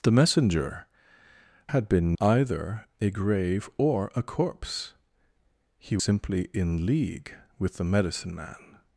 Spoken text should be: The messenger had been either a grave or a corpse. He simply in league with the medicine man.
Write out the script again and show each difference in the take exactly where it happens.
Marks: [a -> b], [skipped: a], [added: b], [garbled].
The messenger had been either a grave or a corpse. He simply in league with the medicine man.